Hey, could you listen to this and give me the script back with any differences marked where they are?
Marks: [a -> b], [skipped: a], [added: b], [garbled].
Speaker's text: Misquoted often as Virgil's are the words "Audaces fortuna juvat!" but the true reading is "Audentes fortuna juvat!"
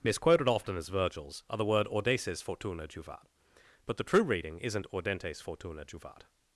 Misquoted often as Virgil's are the [words -> word] "Audaces fortuna juvat!" but the true reading [is -> isn't] "Audentes fortuna juvat!"